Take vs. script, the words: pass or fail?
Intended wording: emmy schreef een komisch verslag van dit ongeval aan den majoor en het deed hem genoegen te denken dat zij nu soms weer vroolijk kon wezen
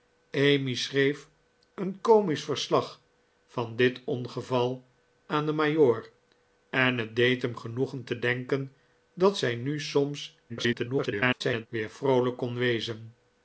fail